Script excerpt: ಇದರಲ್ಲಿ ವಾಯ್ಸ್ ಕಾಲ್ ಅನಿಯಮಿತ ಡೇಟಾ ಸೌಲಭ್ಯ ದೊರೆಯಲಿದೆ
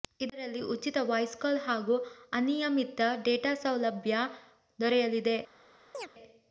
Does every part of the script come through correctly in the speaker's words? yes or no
no